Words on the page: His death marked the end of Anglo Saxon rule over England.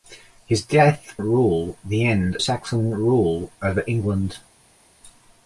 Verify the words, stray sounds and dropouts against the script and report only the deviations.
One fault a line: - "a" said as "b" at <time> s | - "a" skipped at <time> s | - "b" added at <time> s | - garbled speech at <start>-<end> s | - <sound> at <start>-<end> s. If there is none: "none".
- "marked" said as "rule" at 1.2 s
- "of Anglo" skipped at 2.4 s